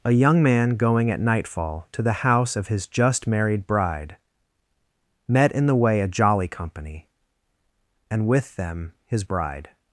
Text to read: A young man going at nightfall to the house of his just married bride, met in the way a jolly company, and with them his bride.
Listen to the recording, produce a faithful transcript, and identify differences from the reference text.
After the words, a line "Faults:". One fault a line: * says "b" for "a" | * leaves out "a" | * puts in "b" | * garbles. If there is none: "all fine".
A young man going at nightfall to the house of his just married bride, met in the way a jolly company, and with them his bride.
Faults:
all fine